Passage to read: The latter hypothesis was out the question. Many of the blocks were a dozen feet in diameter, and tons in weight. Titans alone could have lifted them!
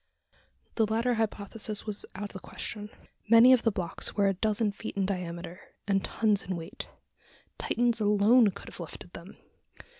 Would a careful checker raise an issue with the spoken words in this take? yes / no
no